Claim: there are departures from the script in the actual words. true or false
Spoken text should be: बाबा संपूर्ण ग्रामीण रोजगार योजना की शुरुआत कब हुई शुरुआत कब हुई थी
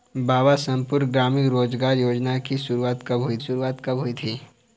false